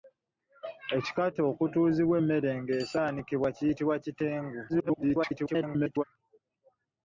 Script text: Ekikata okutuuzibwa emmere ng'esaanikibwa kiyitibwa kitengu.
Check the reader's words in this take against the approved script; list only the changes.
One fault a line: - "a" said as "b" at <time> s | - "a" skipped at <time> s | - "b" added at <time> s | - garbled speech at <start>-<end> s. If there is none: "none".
- garbled speech at 4.7-6.0 s